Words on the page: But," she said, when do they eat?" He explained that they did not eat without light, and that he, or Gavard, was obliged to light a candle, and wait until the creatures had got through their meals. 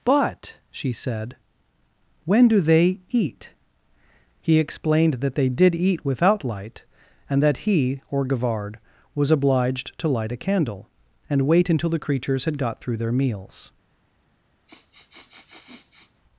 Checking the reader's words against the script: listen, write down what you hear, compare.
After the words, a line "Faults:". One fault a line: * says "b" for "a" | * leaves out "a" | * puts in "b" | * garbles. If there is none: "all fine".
But," she said, when do they eat?" He explained that they did eat without light, and that he, or Gavard, was obliged to light a candle, and wait until the creatures had got through their meals.
Faults:
* leaves out "not"